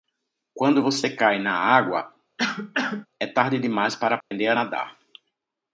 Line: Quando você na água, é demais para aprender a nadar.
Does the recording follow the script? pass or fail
fail